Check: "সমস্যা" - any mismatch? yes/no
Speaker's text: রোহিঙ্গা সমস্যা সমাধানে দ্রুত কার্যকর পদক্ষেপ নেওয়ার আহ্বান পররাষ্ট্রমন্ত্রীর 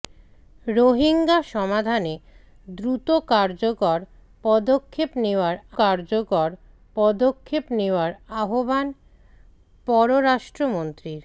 yes